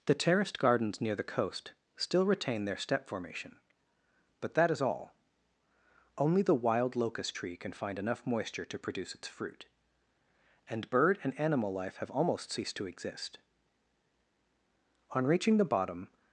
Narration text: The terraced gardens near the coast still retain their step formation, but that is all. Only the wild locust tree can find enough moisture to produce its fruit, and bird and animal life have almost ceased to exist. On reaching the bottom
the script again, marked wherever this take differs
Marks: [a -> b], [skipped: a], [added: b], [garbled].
The terraced gardens near the coast still retain their step formation, but that is all. Only the wild locust tree can find enough moisture to produce its fruit, and bird and animal life have almost ceased to exist. On reaching the bottom